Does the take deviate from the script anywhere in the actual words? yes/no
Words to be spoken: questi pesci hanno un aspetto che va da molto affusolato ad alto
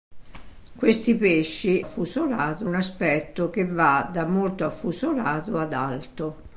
yes